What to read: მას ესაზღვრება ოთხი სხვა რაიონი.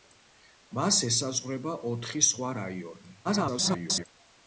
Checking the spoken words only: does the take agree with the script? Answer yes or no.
no